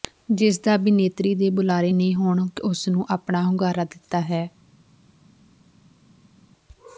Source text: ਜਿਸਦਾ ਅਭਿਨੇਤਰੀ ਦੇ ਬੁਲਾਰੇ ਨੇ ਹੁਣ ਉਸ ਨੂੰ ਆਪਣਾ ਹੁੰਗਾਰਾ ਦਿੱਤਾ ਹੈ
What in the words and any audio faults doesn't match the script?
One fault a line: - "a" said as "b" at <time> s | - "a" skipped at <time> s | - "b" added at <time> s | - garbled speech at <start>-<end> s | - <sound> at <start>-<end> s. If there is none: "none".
none